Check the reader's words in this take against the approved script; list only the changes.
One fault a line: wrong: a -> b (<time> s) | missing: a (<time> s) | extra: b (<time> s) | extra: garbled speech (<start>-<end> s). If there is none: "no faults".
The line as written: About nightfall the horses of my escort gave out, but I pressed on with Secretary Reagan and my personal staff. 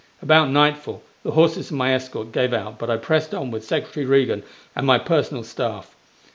no faults